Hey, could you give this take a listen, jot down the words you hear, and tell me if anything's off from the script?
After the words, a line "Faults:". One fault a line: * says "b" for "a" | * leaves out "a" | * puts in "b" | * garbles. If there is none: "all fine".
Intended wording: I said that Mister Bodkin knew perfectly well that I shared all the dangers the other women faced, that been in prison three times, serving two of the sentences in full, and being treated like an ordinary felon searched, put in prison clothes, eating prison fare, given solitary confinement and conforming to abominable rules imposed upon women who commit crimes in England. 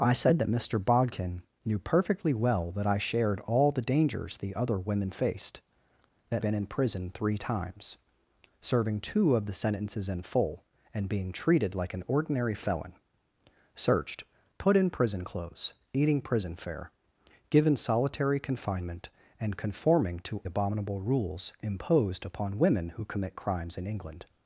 I said that Mister Bodkin knew perfectly well that I shared all the dangers the other women faced, that been in prison three times, serving two of the sentences in full, and being treated like an ordinary felon searched, put in prison clothes, eating prison fare, given solitary confinement and conforming to abominable rules imposed upon women who commit crimes in England.
Faults:
all fine